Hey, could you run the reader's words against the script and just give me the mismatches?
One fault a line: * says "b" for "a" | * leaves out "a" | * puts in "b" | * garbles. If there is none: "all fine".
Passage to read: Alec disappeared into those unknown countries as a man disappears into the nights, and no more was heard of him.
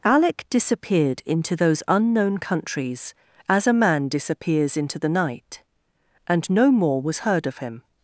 * says "night" for "nights"